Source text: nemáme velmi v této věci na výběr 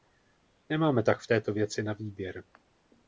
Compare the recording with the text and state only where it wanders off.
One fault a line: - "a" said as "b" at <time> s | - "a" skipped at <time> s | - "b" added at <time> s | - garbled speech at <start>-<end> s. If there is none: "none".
- "velmi" said as "tak" at 1.0 s